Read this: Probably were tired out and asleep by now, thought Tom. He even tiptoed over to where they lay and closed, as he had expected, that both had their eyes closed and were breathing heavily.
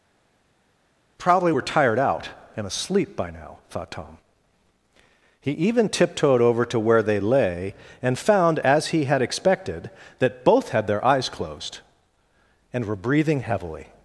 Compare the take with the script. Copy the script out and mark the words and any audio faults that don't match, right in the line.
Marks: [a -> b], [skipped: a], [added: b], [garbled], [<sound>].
Probably were tired out and asleep by now, thought Tom. He even tiptoed over to where they lay and [closed, -> found] as he had expected, that both had their eyes closed and were breathing heavily.